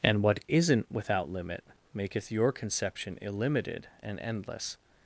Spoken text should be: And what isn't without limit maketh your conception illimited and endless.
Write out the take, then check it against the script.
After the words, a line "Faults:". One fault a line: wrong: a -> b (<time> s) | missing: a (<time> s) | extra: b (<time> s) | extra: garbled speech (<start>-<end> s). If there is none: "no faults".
And what isn't without limit maketh your conception illimited and endless.
Faults:
no faults